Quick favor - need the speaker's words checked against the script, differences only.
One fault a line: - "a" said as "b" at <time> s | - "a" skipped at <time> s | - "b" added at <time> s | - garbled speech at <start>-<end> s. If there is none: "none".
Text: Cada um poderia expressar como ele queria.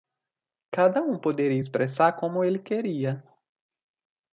none